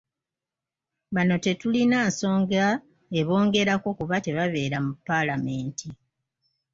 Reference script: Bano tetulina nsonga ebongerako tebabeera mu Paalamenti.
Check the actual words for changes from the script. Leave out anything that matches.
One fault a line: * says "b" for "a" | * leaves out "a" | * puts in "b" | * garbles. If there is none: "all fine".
* puts in "kuba"